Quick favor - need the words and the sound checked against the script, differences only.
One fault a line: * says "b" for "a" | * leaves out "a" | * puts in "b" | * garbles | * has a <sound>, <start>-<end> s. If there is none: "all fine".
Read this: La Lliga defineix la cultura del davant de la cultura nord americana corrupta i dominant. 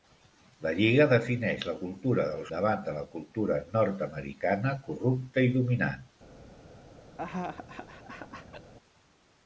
* has a laugh, 7.2-8.7 s